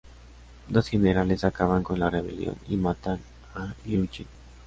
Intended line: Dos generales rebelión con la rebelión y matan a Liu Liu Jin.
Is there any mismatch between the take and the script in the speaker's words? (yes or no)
yes